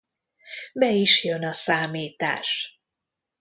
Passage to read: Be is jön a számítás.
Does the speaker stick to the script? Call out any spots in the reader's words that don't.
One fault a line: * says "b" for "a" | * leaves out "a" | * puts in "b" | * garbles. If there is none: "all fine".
all fine